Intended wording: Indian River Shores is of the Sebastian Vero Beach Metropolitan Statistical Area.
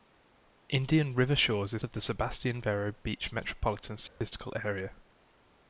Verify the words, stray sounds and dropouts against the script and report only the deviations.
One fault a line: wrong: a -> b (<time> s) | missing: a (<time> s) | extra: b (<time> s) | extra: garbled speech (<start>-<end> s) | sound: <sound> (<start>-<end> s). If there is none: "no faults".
sound: dropout (4.1-4.2 s)